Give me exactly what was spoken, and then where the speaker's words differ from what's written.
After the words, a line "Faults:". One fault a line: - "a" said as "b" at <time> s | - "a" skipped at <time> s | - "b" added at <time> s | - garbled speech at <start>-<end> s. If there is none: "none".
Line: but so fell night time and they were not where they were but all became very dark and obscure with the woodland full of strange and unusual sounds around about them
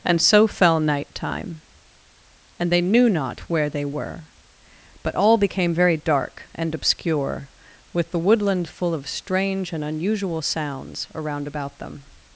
and so fell night time and they knew not where they were but all became very dark and obscure with the woodland full of strange and unusual sounds around about them
Faults:
- "but" said as "and" at 0.0 s
- "were" said as "knew" at 2.8 s